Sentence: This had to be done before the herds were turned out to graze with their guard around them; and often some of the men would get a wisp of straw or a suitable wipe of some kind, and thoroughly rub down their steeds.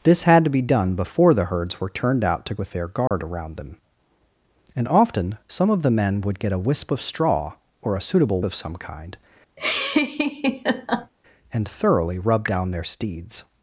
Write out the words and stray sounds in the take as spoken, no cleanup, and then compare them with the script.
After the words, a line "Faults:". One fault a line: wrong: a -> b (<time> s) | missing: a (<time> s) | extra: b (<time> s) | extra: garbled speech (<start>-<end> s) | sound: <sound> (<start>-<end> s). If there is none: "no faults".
This had to be done before the herds were turned out to with their guard around them; and often some of the men would get a wisp of straw or a suitable of some kind, and thoroughly rub down their steeds.
Faults:
missing: graze (2.5 s)
sound: dropout (3.1-3.1 s)
missing: wipe (8.4 s)
sound: laugh (9.6-11.1 s)